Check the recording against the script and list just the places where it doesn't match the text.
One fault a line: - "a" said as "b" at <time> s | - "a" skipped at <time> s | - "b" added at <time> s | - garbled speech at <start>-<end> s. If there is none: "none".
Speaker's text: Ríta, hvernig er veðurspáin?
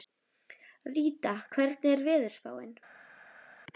none